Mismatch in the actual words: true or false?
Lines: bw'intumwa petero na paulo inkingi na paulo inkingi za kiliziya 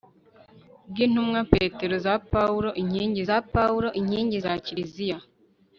false